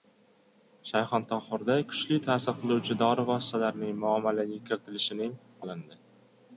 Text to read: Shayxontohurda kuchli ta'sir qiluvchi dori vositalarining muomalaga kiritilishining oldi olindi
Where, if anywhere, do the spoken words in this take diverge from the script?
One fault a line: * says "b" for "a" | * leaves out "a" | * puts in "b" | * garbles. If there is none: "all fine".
* leaves out "oldi"